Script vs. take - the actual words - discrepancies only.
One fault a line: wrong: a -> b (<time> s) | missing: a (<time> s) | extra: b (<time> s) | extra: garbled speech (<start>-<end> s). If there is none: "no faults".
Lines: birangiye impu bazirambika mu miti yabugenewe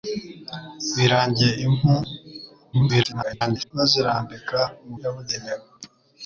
extra: garbled speech (2.7-3.7 s)
missing: miti (4.9 s)